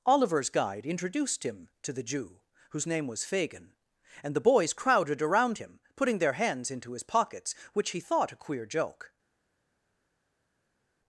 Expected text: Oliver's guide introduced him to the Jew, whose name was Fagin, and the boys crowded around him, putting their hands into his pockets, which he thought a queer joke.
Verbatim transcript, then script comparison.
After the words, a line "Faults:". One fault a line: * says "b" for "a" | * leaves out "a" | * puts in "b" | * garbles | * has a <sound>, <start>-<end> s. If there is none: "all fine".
Oliver's guide introduced him to the Jew, whose name was Fagin, and the boys crowded around him, putting their hands into his pockets, which he thought a queer joke.
Faults:
all fine